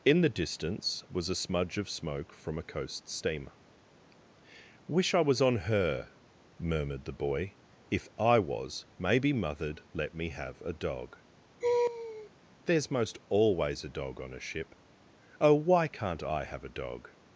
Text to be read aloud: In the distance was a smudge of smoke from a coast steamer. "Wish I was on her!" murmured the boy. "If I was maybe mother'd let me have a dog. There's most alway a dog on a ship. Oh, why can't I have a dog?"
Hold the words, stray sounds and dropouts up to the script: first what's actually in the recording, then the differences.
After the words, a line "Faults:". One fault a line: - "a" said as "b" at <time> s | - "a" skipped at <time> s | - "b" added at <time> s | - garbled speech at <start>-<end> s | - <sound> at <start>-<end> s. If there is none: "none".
In the distance was a smudge of smoke from a coast steamer. "Wish I was on her!" murmured the boy. "If I was maybe mother'd let me have a dog. There's most always a dog on a ship. Oh, why can't I have a dog?"
Faults:
- laugh at 11.6-12.3 s
- "alway" said as "always" at 13.3 s